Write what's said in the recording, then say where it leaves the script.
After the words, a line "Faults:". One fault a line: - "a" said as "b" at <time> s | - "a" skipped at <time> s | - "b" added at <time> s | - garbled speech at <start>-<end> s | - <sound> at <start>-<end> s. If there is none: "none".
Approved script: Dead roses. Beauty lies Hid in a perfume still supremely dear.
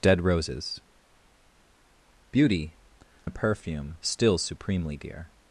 Dead roses. Beauty a perfume still supremely dear.
Faults:
- "lies Hid in" skipped at 2.7 s